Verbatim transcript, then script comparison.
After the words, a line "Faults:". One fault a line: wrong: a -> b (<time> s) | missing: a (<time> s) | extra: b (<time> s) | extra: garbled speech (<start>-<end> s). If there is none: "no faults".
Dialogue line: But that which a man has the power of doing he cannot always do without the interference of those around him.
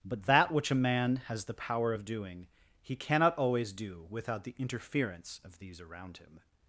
But that which a man has the power of doing he cannot always do without the interference of these around him.
Faults:
wrong: those -> these (5.6 s)